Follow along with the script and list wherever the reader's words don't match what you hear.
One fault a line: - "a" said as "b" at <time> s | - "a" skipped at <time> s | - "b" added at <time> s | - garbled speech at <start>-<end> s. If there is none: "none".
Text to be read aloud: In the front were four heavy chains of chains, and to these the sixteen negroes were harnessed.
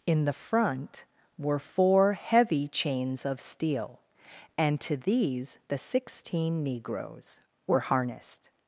- "chains" said as "steel" at 3.4 s